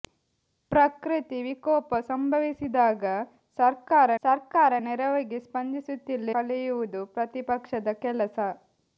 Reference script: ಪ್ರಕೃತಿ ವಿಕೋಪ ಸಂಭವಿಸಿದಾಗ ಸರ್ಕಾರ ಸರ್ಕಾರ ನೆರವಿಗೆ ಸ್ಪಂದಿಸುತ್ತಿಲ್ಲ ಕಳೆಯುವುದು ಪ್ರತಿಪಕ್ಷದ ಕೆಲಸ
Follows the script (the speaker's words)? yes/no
yes